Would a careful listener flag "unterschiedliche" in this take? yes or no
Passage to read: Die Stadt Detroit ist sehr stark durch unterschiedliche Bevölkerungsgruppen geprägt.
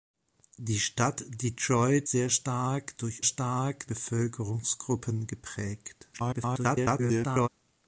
yes